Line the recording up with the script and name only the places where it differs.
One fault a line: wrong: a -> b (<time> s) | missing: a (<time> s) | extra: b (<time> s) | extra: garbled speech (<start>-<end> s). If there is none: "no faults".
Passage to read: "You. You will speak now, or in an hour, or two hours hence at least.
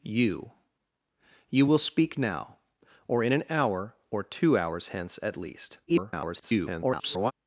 extra: garbled speech (5.9-7.3 s)